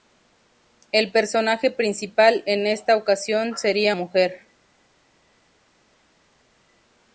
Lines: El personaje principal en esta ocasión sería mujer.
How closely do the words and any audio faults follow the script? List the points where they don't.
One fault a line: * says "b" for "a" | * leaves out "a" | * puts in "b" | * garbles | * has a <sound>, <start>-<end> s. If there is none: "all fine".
all fine